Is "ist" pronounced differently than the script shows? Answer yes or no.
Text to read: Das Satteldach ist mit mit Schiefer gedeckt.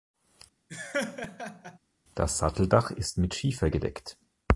no